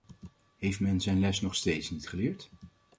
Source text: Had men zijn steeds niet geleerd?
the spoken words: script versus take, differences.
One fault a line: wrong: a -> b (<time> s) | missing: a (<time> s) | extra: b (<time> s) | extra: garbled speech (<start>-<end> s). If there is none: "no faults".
wrong: Had -> Heeft (0.6 s)
extra: les nog (1.2 s)